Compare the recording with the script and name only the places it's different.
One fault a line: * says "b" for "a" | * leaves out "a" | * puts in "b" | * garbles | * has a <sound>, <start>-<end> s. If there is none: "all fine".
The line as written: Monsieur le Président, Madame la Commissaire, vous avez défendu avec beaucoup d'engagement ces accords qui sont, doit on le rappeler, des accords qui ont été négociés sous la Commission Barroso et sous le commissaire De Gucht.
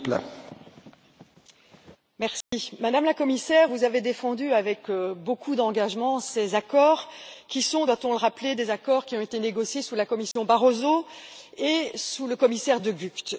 * has a dropout, 2.4-2.5 s
* has a dropout, 10.3-10.4 s